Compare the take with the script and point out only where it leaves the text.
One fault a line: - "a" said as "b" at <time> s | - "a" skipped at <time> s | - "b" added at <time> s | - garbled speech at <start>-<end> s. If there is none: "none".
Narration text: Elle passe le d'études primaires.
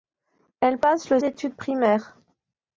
none